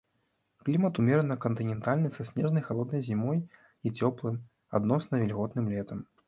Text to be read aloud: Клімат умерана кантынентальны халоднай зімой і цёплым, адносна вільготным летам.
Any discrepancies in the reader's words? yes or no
yes